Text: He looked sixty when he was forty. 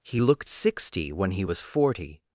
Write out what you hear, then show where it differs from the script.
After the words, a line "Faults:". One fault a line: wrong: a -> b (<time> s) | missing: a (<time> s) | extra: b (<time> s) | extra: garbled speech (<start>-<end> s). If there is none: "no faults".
He looked sixty when he was forty.
Faults:
no faults